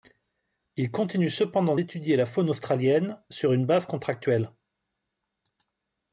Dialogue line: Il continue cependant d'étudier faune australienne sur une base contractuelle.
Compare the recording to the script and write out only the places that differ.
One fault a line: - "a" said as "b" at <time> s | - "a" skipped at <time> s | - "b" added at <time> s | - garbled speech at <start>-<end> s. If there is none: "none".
- "la" added at 2.2 s